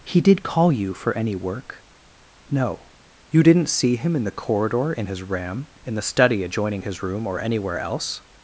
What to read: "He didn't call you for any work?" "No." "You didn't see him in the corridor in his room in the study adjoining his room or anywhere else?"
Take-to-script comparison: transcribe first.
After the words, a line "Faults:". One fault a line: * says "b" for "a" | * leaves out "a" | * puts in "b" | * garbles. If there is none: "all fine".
"He did call you for any work?" "No." "You didn't see him in the corridor in his ram in the study adjoining his room or anywhere else?"
Faults:
* says "did" for "didn't"
* says "ram" for "room"